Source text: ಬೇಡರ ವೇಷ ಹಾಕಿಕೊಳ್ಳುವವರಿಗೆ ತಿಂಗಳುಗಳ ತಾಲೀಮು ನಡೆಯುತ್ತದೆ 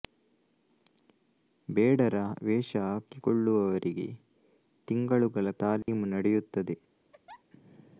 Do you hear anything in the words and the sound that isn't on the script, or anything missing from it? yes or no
yes